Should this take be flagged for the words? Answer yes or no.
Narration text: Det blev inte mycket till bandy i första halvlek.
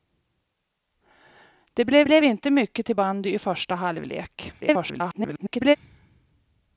yes